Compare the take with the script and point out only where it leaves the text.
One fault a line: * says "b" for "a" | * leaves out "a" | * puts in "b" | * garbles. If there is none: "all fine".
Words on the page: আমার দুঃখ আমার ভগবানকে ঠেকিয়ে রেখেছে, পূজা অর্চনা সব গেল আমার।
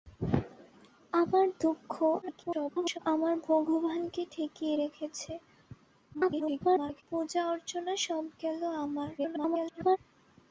* garbles
* garbles
* garbles